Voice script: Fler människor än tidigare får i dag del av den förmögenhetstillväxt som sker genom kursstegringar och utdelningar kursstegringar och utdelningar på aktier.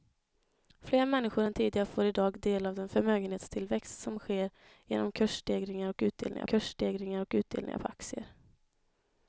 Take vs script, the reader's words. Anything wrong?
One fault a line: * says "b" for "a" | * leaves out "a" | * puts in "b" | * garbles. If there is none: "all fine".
all fine